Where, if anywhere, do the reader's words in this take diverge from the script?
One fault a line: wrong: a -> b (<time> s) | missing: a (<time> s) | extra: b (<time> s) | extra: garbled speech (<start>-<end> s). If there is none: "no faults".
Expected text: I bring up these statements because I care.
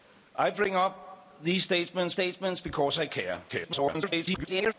extra: statements (2.1 s)
extra: garbled speech (3.5-4.7 s)